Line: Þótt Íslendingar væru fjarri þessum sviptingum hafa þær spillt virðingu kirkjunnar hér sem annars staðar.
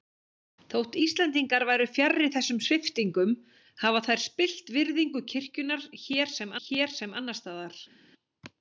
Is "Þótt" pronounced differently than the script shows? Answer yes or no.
no